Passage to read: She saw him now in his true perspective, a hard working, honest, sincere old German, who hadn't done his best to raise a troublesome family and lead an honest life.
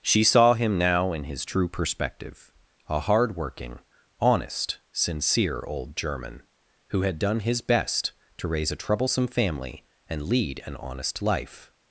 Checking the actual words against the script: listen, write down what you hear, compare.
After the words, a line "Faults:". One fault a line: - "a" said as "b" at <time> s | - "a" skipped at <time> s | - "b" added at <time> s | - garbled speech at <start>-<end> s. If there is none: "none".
She saw him now in his true perspective, a hard working, honest, sincere old German, who had done his best to raise a troublesome family and lead an honest life.
Faults:
- "hadn't" said as "had" at 7.0 s